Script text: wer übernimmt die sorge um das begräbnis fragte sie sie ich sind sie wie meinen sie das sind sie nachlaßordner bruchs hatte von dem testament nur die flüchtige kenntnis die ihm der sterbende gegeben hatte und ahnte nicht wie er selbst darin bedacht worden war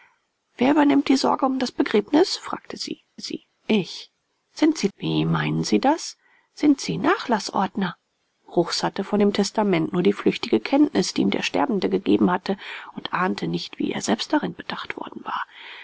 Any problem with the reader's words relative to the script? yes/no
no